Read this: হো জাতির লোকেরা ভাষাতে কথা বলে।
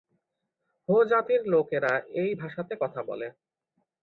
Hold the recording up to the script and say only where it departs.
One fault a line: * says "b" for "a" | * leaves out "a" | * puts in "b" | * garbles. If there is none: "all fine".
* puts in "এই"